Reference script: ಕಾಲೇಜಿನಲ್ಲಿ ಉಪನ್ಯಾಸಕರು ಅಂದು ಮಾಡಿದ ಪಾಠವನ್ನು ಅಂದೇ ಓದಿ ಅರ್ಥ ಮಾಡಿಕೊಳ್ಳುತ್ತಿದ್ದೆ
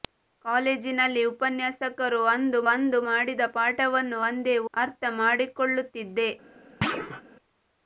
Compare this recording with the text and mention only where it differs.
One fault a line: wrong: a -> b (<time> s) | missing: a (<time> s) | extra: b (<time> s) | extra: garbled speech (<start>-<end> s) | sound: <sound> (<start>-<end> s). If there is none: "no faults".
extra: ಅಂದು (2.7 s)
missing: ಓದಿ (4.6 s)
sound: thud (6.8-7.2 s)